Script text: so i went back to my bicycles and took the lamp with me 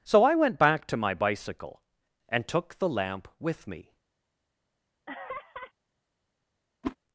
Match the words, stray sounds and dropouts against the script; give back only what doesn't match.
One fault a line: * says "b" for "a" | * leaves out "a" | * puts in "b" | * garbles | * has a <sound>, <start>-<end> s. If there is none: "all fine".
* says "bicycle" for "bicycles"
* has a laugh, 5.1-5.7 s
* has a whoosh, 6.8-7.0 s